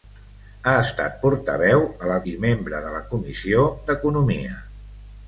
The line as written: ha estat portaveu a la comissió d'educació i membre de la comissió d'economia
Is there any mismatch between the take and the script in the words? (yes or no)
yes